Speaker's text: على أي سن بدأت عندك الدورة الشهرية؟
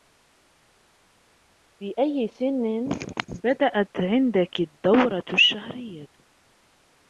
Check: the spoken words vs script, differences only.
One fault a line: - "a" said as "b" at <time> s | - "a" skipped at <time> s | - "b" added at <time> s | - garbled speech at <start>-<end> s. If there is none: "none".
- "على" said as "في" at 1.8 s